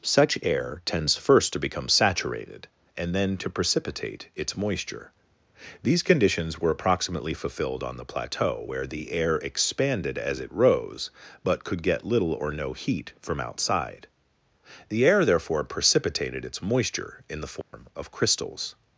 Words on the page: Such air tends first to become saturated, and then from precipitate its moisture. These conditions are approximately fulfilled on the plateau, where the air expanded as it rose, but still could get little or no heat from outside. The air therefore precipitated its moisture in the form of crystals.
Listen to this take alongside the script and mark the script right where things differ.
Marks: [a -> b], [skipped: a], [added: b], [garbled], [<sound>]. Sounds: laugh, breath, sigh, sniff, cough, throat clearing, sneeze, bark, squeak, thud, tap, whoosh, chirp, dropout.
Such air tends first to become saturated, and then [from -> to] precipitate its moisture. These conditions [are -> were] approximately fulfilled on the plateau, where the air expanded as it rose, but [skipped: still] could get little or no heat from outside. The air therefore precipitated its moisture in the form [dropout] of crystals.